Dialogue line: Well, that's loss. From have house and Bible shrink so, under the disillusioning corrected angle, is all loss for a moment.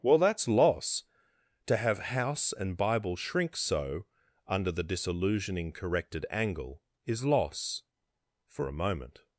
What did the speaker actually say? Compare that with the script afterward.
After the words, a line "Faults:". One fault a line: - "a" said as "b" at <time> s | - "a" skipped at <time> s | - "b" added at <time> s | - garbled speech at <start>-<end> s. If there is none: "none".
Well, that's loss. To have house and Bible shrink so, under the disillusioning corrected angle, is loss for a moment.
Faults:
- "From" said as "To" at 1.7 s
- "all" skipped at 7.2 s